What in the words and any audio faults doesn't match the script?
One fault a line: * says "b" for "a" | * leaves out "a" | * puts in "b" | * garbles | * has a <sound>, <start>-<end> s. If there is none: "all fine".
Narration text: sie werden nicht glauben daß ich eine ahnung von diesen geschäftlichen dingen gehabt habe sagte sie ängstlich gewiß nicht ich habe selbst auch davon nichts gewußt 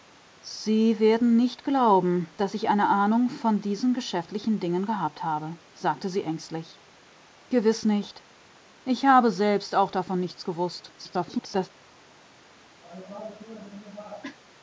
* garbles
* has a cough, 12.8-14.4 s